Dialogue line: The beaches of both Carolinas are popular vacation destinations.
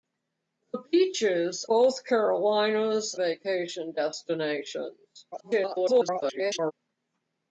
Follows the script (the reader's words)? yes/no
no